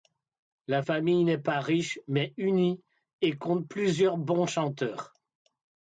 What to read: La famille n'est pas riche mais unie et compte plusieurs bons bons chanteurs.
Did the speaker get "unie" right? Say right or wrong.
right